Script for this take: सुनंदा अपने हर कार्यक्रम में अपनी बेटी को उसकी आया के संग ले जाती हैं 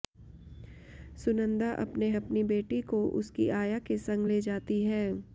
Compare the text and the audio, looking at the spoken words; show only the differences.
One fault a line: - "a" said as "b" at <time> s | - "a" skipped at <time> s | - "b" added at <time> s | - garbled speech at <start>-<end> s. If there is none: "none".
- "हर कार्यक्रम में" skipped at 2.1 s